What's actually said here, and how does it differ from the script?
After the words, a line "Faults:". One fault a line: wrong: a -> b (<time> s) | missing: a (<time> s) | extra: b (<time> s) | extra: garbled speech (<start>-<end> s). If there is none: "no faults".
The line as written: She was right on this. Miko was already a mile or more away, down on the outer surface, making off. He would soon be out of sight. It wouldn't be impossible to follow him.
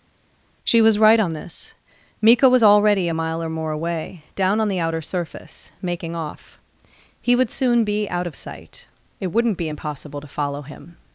She was right on this. Miko was already a mile or more away, down on the outer surface, making off. He would soon be out of sight. It wouldn't be impossible to follow him.
Faults:
no faults